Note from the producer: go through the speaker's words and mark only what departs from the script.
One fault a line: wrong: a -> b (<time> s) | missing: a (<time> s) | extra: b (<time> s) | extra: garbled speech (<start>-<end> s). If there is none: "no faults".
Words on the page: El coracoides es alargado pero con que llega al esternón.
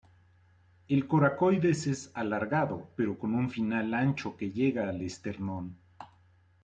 extra: un final ancho (3.4 s)